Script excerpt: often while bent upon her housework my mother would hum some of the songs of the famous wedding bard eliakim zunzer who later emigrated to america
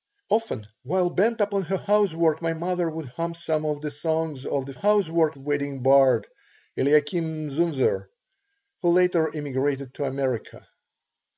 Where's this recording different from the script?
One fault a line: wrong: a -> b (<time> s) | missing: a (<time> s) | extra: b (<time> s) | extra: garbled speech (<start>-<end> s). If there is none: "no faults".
wrong: famous -> housework (4.7 s)